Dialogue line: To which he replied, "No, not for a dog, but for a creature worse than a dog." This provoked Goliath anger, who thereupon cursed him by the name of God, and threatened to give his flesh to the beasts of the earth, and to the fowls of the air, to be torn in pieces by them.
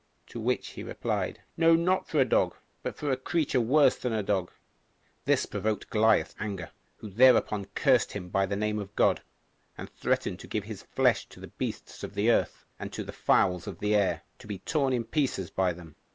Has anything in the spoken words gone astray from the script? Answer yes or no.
no